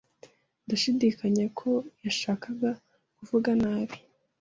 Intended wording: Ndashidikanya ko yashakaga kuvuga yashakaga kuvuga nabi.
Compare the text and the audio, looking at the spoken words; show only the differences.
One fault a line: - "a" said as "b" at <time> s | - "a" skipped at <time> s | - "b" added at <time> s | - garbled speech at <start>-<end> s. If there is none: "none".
- "yashakaga kuvuga" skipped at 3.5 s